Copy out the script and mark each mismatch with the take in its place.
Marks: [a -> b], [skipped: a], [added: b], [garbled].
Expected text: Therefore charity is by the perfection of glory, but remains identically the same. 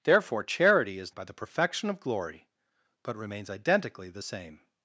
Therefore charity is by the perfection of glory, but remains identically the same.